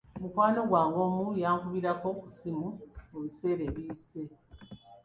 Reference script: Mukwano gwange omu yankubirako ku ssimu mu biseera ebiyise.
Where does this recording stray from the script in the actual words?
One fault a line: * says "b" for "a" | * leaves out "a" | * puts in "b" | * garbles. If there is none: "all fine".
all fine